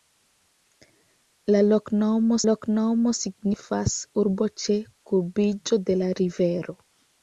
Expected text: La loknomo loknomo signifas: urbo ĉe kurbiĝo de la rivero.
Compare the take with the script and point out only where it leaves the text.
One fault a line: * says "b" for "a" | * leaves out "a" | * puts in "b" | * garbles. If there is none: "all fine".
all fine